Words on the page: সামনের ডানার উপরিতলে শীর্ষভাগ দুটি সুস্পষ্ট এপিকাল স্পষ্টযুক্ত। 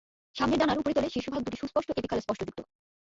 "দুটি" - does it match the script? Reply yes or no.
yes